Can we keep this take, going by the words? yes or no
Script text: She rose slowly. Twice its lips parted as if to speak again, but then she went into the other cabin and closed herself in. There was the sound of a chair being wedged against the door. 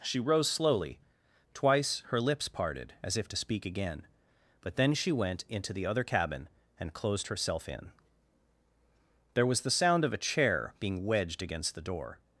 no